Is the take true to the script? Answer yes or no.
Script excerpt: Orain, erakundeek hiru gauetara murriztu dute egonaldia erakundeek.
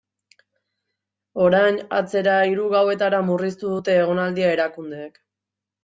no